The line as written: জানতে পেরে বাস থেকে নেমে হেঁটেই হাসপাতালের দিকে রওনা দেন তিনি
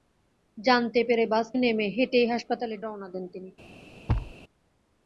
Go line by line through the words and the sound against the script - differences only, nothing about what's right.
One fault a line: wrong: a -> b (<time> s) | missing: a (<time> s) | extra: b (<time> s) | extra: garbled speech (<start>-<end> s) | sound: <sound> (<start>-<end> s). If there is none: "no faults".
missing: থেকে (1.5 s)
missing: দিকে (2.8 s)
sound: thud (4.1-4.3 s)